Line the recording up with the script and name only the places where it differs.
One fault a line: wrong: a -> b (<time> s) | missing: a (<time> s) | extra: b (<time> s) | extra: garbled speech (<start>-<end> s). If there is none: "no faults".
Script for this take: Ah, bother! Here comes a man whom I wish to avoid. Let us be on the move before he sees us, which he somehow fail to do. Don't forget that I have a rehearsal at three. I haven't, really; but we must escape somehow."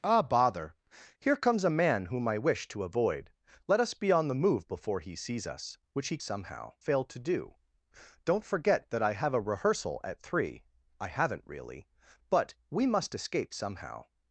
no faults